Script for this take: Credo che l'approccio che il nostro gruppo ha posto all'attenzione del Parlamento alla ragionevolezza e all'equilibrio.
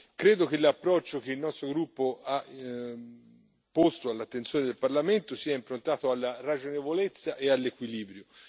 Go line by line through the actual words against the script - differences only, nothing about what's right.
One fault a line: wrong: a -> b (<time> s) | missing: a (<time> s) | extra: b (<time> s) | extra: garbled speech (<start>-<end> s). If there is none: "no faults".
extra: sia improntato (5.3 s)